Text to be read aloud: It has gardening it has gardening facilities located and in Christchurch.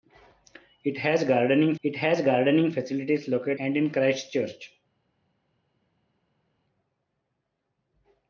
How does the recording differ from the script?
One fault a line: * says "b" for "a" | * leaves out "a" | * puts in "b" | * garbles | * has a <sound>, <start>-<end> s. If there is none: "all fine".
all fine